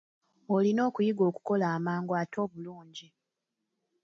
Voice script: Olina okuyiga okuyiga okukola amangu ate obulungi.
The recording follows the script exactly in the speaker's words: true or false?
false